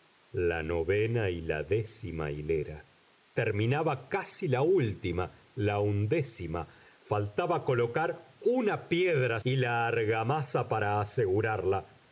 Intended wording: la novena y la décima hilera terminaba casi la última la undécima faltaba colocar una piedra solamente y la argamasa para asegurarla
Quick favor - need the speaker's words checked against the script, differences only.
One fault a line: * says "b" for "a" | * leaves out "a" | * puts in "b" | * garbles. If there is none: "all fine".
* leaves out "solamente"